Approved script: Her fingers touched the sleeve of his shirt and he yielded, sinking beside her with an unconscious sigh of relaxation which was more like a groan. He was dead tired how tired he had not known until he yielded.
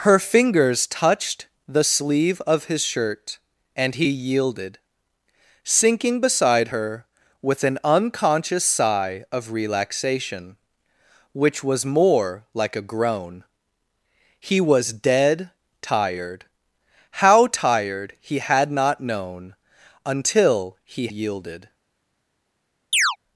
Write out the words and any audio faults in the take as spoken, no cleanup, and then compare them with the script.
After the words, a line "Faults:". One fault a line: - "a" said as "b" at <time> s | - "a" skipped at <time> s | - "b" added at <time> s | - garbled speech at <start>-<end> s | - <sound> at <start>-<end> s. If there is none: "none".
Her fingers touched the sleeve of his shirt and he yielded, sinking beside her with an unconscious sigh of relaxation which was more like a groan. He was dead tired how tired he had not known until he yielded.
Faults:
- chirp at 22.9-23.2 s